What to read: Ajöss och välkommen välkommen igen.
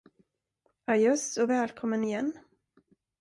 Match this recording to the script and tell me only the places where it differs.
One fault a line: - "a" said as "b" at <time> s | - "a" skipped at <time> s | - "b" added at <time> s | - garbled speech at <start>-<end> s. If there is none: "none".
- "välkommen" skipped at 2.0 s